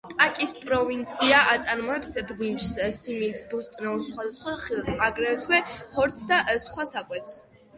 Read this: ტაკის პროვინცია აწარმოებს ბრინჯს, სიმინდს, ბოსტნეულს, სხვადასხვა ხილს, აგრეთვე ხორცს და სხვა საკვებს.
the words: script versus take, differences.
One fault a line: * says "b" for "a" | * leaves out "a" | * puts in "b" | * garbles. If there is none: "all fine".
all fine